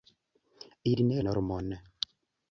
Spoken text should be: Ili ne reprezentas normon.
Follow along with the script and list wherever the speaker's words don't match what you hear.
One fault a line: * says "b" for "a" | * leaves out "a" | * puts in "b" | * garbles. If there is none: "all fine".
* leaves out "reprezentas"